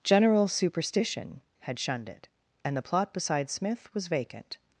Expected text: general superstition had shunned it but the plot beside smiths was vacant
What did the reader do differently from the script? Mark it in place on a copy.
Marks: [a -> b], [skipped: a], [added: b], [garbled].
general superstition had shunned it [but -> and] the plot beside [smiths -> smith] was vacant